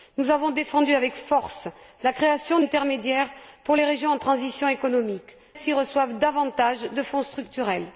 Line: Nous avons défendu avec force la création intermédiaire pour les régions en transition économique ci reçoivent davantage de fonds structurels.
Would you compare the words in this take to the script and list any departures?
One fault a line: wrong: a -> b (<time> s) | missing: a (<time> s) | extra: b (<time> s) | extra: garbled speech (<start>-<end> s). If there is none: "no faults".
no faults